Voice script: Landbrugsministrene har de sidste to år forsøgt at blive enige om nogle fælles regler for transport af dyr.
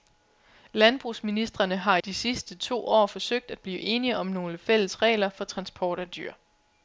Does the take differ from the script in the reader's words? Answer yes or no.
no